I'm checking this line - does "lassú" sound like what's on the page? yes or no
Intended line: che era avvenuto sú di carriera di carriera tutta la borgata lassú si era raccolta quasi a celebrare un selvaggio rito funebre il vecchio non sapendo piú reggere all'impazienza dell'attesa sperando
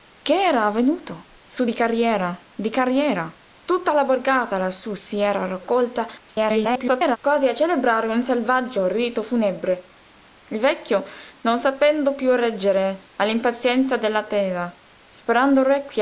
yes